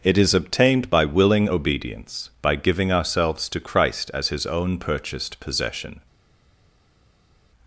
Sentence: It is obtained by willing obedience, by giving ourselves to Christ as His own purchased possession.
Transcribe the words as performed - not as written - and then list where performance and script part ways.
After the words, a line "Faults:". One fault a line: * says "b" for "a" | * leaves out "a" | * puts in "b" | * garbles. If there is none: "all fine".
It is obtained by willing obedience, by giving ourselves to Christ as His own purchased possession.
Faults:
all fine